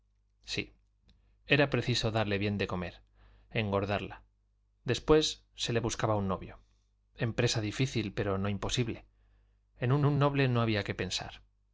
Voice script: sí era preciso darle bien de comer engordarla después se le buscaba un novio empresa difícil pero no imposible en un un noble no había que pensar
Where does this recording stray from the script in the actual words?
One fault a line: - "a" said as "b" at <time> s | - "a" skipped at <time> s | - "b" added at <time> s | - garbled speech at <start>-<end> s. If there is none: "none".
none